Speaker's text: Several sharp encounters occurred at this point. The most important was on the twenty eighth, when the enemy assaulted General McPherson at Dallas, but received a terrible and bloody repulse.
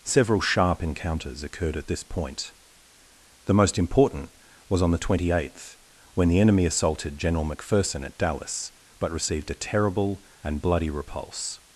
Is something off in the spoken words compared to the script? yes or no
no